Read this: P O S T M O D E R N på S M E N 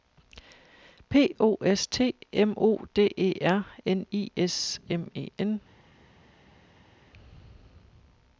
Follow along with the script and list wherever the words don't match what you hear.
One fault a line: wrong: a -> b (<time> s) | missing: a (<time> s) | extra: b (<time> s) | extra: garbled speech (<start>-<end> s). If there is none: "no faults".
wrong: på -> I (4.1 s)